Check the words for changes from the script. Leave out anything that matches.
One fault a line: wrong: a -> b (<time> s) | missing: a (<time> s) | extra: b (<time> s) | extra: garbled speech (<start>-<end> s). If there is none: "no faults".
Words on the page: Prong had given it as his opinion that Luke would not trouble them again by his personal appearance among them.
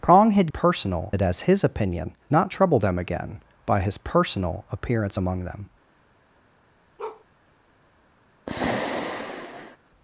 wrong: given -> personal (0.5 s)
missing: that Luke would (2.1 s)